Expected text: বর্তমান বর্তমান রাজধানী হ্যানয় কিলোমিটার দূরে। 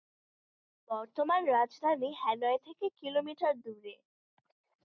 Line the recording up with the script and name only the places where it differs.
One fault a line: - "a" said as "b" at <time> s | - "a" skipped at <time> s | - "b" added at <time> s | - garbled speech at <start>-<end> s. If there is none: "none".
- "বর্তমান" skipped at 1.4 s
- "থেকে" added at 2.6 s